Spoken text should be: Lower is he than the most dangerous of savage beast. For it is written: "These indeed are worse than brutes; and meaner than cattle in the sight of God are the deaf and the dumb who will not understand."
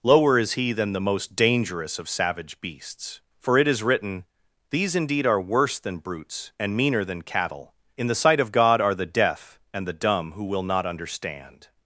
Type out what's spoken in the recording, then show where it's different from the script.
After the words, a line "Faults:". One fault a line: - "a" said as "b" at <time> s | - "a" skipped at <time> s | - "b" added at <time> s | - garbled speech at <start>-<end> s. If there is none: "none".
Lower is he than the most dangerous of savage beasts. For it is written: "These indeed are worse than brutes; and meaner than cattle in the sight of God are the deaf and the dumb who will not understand."
Faults:
- "beast" said as "beasts" at 2.6 s